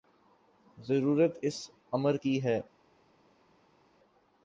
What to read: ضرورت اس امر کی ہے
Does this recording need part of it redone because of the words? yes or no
no